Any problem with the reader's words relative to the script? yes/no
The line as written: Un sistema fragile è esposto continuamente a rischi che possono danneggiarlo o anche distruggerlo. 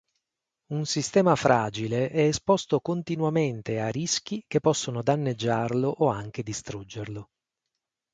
no